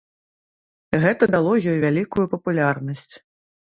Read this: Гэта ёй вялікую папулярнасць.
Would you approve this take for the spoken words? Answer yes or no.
no